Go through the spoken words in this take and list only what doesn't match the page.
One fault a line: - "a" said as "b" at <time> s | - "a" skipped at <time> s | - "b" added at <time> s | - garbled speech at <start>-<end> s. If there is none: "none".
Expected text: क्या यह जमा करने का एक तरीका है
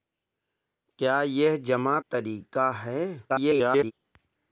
- "करने का एक" skipped at 2.0 s
- garbled speech at 3.3-3.9 s